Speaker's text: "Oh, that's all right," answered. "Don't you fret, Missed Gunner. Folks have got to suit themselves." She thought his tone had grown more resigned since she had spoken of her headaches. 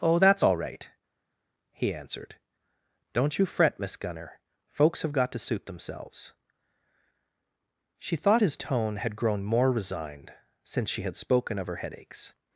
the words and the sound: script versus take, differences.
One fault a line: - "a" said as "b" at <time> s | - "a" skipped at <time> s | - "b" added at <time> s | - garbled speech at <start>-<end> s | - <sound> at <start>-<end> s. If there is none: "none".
- "he" added at 1.7 s
- "Missed" said as "Miss" at 3.8 s